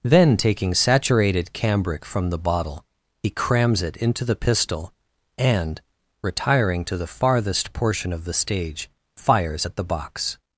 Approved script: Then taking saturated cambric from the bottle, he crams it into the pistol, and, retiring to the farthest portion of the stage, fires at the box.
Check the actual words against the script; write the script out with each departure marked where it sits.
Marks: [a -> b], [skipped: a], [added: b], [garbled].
Then taking saturated cambric from the bottle, he crams it into the pistol, and, retiring to the farthest portion of the stage, fires at the box.